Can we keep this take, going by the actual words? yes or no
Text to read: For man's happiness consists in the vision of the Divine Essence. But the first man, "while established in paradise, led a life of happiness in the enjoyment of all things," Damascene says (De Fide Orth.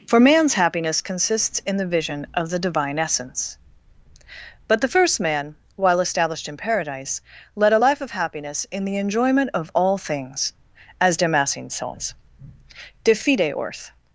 no